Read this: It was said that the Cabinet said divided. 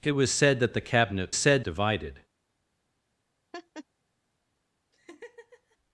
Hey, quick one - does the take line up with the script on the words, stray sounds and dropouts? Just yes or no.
no